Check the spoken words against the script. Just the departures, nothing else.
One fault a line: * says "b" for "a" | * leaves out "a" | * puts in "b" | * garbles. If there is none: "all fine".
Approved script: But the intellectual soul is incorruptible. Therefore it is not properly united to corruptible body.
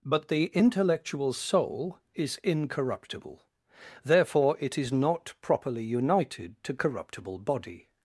all fine